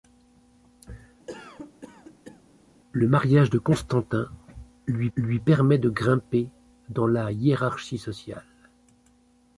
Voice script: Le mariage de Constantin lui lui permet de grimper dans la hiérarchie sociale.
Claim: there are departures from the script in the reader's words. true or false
false